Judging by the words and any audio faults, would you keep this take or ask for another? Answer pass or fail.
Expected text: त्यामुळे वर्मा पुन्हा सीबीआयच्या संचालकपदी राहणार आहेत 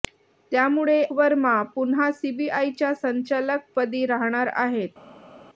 pass